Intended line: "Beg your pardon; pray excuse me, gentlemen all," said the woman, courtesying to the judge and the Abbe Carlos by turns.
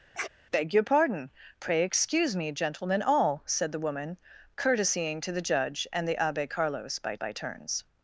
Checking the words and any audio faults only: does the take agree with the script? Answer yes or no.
no